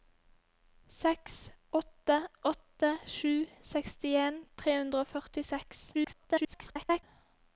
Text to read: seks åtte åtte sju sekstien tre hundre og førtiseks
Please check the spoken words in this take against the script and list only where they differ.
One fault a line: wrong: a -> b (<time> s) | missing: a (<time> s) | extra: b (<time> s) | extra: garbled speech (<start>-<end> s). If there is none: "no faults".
extra: garbled speech (5.9-7.0 s)